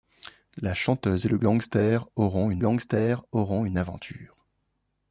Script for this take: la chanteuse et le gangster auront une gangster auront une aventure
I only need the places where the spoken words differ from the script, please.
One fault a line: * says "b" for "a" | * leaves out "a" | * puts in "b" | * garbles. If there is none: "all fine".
all fine